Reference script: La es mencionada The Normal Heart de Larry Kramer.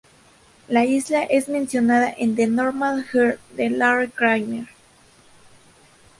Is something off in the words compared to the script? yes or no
yes